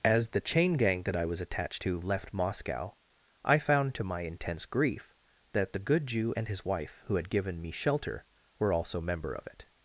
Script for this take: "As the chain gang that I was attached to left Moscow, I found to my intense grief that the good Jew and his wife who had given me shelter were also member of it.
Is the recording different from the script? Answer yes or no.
no